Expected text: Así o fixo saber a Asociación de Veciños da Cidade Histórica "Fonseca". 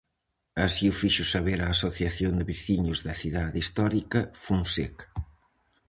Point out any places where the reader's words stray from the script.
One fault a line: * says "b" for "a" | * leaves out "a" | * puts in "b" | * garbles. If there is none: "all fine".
all fine